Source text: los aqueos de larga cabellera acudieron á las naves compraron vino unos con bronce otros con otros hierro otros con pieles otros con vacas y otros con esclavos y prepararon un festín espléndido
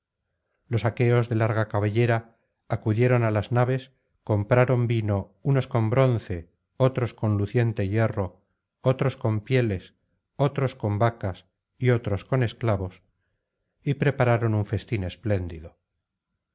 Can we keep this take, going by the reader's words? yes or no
no